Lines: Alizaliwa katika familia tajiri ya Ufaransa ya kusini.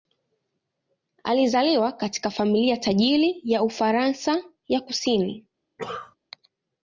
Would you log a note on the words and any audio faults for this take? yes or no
yes